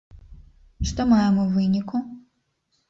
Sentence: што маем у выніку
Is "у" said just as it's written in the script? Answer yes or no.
yes